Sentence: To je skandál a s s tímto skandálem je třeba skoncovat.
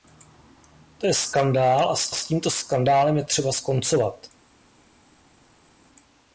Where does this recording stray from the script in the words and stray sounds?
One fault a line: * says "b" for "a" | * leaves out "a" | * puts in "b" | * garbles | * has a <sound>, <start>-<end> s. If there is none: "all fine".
all fine